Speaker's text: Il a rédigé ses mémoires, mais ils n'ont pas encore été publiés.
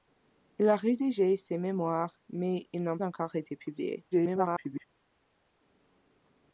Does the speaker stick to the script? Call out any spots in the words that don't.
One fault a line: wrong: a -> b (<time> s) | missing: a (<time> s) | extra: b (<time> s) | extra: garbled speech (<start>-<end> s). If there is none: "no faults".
missing: pas (3.0 s)
extra: garbled speech (4.1-4.8 s)